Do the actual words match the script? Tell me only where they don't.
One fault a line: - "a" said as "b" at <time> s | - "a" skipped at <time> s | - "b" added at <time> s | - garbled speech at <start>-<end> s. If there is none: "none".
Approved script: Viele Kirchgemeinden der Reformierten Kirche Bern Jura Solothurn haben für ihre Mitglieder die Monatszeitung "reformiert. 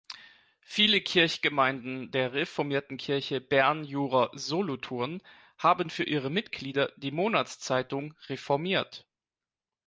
none